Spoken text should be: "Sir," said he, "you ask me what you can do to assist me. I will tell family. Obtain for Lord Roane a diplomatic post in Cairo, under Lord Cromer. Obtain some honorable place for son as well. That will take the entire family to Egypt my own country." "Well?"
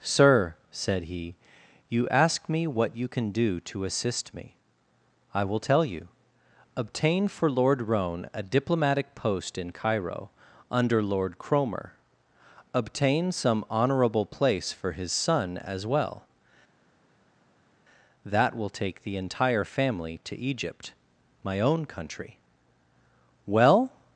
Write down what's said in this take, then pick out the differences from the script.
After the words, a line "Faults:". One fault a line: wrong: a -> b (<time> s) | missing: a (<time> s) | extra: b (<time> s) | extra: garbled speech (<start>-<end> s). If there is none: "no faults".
"Sir," said he, "you ask me what you can do to assist me. I will tell you. Obtain for Lord Roane a diplomatic post in Cairo, under Lord Cromer. Obtain some honorable place for his son as well. That will take the entire family to Egypt my own country." "Well?"
Faults:
wrong: family -> you (5.8 s)
extra: his (14.9 s)